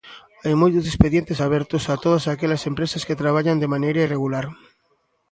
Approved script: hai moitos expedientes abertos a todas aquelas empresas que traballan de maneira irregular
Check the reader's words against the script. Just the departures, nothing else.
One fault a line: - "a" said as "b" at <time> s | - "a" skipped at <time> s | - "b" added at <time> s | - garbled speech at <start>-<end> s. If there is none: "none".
none